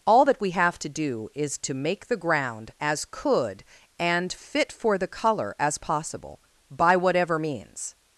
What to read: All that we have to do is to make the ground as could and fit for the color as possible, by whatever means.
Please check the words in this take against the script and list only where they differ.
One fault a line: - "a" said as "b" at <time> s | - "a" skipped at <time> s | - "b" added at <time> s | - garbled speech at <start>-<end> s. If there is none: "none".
none